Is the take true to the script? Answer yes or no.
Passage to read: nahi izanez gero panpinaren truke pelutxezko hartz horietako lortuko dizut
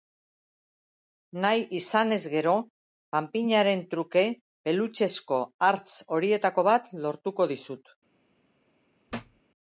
no